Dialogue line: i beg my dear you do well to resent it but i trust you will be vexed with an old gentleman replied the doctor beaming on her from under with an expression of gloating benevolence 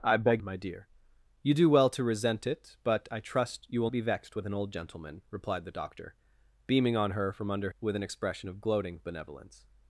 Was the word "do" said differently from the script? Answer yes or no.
no